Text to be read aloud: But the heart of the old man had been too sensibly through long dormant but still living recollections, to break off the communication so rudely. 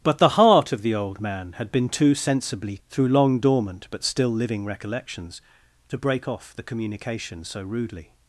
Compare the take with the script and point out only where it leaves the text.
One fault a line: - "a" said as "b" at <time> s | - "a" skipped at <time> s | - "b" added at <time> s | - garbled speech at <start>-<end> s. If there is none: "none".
none